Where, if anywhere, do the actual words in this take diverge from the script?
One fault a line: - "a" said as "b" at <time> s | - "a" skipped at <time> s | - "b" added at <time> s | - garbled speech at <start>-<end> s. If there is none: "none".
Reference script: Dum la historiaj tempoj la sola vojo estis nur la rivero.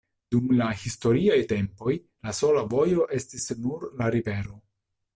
none